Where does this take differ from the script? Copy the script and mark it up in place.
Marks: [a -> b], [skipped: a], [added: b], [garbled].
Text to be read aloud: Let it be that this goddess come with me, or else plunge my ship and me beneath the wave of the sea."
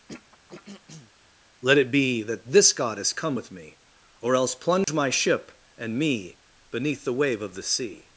Let it be that this goddess come with me, or else plunge my ship and me beneath the wave of the sea."